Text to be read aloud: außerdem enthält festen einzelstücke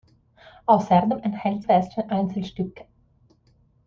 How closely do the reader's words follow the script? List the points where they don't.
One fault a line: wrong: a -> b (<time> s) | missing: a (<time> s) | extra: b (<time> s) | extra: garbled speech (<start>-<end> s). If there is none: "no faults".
no faults